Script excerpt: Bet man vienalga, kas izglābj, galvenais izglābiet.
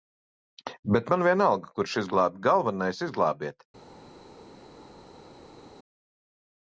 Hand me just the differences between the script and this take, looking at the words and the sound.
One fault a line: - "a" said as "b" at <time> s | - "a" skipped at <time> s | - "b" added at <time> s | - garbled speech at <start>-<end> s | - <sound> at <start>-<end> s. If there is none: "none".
- "kas" said as "kurš" at 1.8 s